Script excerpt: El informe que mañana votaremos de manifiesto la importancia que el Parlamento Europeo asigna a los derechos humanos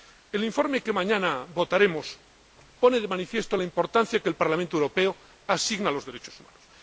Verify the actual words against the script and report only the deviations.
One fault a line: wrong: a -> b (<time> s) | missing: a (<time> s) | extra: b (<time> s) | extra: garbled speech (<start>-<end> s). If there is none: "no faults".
extra: pone (2.8 s)